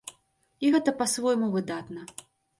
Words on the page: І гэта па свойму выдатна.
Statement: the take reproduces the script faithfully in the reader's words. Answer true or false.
true